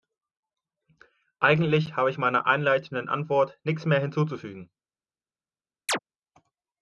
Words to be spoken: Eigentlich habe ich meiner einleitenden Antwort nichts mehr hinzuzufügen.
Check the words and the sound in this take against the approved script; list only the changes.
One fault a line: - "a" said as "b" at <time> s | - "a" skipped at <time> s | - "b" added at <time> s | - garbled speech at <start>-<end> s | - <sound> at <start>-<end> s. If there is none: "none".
- chirp at 5.9-6.0 s